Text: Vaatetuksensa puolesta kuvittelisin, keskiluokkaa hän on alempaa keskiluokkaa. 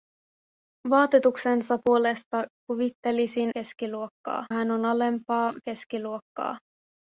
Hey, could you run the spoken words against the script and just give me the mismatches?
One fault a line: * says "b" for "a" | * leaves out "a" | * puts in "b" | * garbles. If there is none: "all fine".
all fine